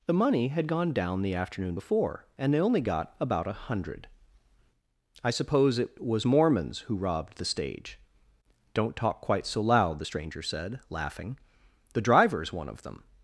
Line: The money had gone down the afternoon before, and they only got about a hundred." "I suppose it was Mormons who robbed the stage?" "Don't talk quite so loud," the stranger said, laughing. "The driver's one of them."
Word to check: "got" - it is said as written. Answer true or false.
true